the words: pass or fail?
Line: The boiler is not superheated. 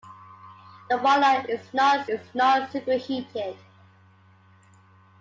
fail